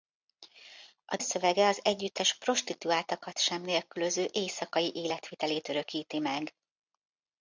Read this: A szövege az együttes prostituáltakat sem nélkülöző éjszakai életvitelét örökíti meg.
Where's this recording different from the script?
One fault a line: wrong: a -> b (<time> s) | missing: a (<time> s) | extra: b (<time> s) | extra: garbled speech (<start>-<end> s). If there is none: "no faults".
no faults